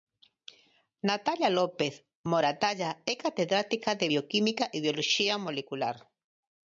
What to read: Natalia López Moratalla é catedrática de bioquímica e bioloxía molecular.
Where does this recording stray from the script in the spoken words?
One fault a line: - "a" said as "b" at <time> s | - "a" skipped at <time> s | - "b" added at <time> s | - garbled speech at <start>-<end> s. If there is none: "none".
none